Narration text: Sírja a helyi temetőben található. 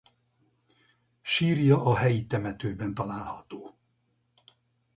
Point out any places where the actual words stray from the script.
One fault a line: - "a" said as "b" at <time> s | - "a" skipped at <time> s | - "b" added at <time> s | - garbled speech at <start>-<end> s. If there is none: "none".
none